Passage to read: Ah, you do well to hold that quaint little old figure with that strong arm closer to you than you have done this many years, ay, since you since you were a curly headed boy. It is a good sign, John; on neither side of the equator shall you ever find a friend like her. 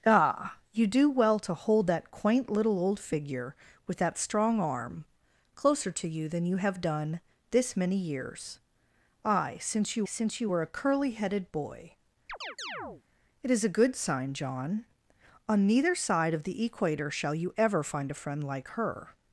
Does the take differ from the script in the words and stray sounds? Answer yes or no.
yes